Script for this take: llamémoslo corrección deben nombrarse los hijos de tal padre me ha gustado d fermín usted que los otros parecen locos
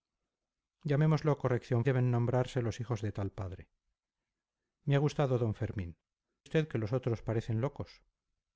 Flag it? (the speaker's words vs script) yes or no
no